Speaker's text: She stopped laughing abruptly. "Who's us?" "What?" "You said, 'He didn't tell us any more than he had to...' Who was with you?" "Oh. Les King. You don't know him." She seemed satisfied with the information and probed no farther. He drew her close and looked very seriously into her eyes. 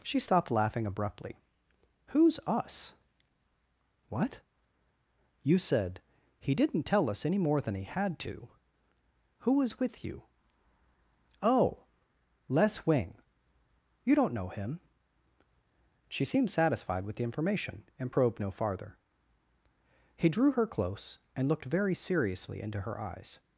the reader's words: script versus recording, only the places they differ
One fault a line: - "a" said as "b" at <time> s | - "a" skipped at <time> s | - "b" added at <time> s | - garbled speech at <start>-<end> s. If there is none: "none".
- "King" said as "Wing" at 12.8 s